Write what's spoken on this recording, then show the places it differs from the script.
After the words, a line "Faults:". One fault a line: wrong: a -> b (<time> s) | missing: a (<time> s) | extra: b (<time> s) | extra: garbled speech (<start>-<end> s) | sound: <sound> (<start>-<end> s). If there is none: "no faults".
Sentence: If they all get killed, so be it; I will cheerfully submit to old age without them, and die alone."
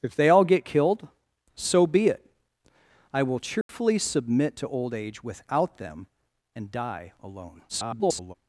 If they all get killed, so be it; I will cheerfully submit to old age without them, and die alone." [garbled]
Faults:
sound: dropout (3.6-3.7 s)
extra: garbled speech (7.7-8.3 s)